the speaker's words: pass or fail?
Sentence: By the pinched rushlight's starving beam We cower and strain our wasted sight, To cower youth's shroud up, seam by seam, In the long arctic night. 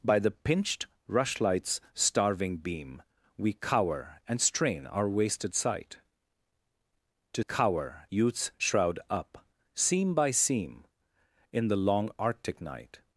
pass